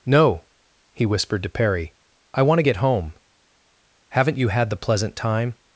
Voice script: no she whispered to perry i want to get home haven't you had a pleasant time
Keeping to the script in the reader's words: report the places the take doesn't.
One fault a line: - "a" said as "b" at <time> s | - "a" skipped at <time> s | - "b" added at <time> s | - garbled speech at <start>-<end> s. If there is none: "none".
- "she" said as "he" at 0.9 s
- "a" said as "the" at 4.7 s